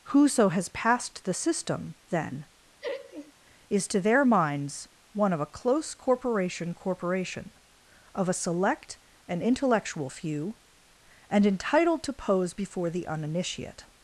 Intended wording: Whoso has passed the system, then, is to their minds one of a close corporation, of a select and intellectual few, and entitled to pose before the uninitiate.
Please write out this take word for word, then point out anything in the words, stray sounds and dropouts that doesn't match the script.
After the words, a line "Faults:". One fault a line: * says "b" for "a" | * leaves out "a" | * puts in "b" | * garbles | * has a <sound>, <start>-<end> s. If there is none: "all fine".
Whoso has passed the system, then, is to their minds one of a close corporation corporation, of a select and intellectual few, and entitled to pose before the uninitiate.
Faults:
* has a laugh, 2.8-3.3 s
* puts in "corporation"